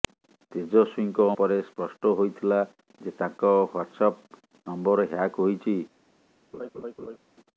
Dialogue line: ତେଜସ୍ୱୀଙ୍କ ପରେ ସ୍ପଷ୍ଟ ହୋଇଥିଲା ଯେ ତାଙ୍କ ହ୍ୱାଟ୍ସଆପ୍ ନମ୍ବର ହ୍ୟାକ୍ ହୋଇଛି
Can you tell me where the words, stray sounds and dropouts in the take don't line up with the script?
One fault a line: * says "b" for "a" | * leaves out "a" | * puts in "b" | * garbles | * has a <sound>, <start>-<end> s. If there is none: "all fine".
* has a laugh, 6.5-7.2 s